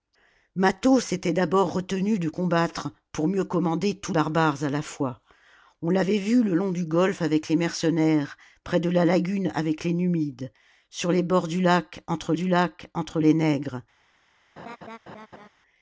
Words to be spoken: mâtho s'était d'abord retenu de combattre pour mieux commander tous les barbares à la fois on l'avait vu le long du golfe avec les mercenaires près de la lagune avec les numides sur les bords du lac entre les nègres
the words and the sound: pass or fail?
fail